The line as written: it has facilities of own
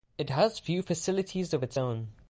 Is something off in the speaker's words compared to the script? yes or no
yes